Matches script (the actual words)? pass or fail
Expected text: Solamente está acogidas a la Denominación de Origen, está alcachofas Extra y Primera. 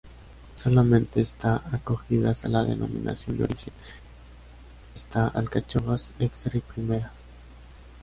pass